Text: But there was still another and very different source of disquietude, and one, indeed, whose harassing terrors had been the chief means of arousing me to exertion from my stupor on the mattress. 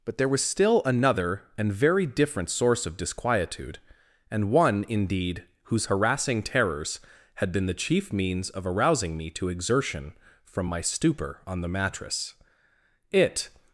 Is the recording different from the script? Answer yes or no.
yes